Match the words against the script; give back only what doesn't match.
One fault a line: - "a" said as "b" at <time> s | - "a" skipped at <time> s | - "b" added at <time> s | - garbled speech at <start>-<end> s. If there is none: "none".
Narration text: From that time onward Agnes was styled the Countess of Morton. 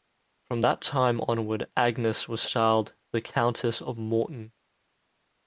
none